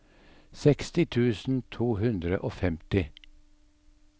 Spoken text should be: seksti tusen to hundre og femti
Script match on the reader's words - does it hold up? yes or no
yes